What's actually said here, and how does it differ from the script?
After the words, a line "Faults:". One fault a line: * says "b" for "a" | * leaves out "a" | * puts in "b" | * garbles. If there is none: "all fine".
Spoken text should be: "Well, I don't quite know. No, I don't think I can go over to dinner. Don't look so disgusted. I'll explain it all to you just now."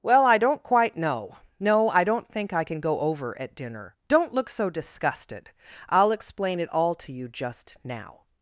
"Well, I don't quite know. No, I don't think I can go over at dinner. Don't look so disgusted. I'll explain it all to you just now."
Faults:
* says "at" for "to"